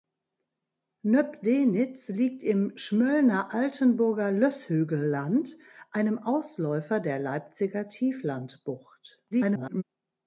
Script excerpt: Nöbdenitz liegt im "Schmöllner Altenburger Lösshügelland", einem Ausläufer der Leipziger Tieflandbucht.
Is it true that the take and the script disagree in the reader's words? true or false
true